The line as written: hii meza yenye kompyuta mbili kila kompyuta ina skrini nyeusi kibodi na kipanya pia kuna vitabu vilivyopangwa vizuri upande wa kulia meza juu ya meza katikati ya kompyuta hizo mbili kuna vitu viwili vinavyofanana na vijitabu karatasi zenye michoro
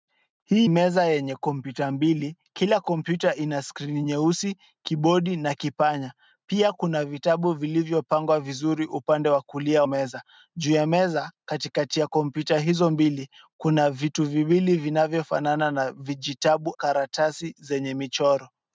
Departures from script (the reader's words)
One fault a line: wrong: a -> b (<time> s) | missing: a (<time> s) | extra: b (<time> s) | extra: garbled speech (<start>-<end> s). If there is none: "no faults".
no faults